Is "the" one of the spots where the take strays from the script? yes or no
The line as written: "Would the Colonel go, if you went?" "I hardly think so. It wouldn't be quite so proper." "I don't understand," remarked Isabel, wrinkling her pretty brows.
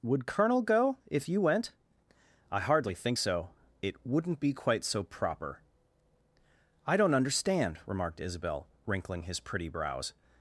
yes